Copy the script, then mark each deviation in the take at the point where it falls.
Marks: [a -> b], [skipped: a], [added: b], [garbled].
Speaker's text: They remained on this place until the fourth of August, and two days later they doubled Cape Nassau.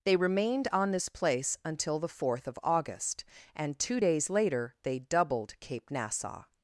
They remained on this place until the fourth of August, and two days later they doubled Cape Nassau.